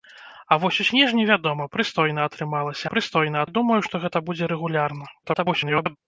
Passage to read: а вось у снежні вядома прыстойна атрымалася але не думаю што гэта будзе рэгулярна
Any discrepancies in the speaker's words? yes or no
yes